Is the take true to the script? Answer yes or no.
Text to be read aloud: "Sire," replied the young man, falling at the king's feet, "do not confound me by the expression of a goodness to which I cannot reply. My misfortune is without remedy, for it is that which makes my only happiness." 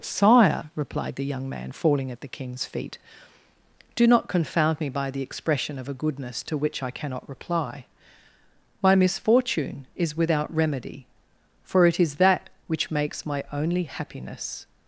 yes